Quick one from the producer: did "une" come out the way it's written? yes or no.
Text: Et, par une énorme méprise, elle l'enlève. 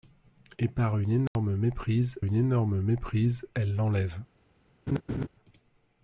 yes